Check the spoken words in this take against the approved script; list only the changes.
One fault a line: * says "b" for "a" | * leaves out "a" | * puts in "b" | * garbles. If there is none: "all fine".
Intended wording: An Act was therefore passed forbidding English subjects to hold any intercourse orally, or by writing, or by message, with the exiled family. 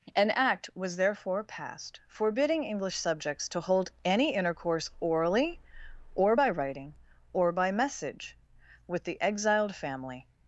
all fine